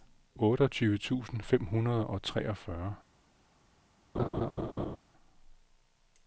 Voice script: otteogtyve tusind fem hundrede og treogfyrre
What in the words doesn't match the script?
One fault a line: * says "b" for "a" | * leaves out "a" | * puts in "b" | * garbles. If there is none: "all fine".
all fine